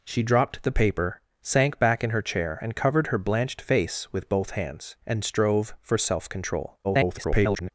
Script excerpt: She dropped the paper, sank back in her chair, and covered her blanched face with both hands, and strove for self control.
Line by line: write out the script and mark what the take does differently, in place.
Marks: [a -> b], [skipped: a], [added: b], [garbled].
She dropped the paper, sank back in her chair, and covered her blanched face with both hands, and strove for self control. [garbled]